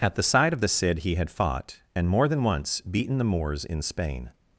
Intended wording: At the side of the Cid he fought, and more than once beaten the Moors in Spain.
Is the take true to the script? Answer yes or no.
no